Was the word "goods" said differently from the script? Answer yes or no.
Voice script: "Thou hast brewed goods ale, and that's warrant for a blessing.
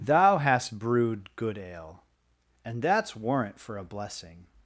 yes